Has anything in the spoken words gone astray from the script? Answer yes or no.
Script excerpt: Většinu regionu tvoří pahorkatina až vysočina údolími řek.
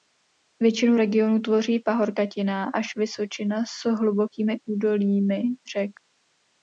yes